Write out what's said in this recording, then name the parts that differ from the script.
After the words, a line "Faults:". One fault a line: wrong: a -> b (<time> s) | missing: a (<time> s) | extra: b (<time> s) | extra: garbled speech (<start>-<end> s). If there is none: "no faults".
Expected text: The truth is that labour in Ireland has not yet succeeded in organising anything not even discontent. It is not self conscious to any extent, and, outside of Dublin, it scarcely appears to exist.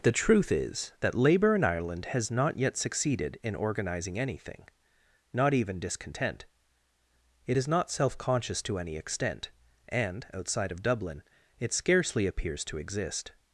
The truth is that labour in Ireland has not yet succeeded in organising anything not even discontent. It is not self conscious to any extent, and, outside of Dublin, it scarcely appears to exist.
Faults:
no faults